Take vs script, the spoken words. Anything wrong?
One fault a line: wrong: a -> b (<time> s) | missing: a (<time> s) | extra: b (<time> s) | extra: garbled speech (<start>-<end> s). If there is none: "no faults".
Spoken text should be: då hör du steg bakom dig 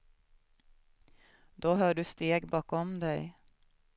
no faults